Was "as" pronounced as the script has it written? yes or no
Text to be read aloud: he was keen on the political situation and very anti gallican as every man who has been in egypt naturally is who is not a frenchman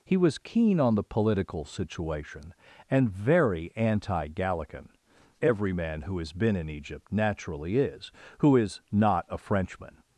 no